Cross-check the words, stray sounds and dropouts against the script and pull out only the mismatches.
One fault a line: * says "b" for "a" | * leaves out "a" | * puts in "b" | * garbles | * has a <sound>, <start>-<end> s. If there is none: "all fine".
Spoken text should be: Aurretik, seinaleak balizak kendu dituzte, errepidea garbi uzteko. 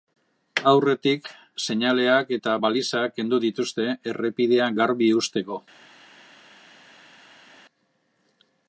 * puts in "eta"